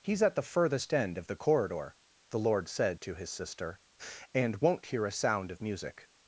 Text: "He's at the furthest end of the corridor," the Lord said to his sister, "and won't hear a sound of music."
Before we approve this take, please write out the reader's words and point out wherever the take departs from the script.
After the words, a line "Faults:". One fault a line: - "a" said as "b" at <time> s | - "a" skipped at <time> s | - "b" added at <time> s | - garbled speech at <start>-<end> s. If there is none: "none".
"He's at the furthest end of the corridor," the Lord said to his sister, "and won't hear a sound of music."
Faults:
none